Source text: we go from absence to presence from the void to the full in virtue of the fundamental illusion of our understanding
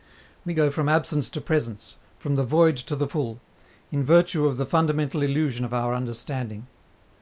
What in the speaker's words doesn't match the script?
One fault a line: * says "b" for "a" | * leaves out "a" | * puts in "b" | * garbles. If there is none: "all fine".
all fine